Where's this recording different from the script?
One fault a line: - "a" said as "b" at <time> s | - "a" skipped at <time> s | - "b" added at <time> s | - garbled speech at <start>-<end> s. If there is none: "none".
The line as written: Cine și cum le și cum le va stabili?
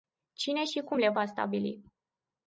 - "și cum le" skipped at 1.1 s